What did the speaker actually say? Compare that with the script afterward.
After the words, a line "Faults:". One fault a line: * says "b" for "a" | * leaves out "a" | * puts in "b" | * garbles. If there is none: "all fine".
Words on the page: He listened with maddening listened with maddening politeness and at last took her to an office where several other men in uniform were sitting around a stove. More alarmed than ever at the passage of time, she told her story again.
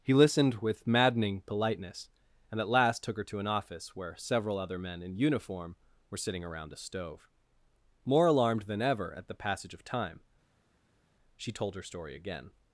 He listened with maddening politeness and at last took her to an office where several other men in uniform were sitting around a stove. More alarmed than ever at the passage of time, she told her story again.
Faults:
* leaves out "listened with maddening"